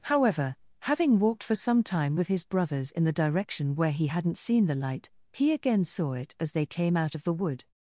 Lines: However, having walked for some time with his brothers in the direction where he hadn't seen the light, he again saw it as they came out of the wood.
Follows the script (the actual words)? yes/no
yes